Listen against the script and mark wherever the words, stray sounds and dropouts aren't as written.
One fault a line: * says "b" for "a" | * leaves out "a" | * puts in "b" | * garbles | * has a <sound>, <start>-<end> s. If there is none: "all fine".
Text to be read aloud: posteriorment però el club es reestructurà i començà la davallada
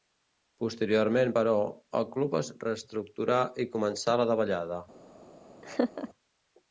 * has a laugh, 5.6-6.1 s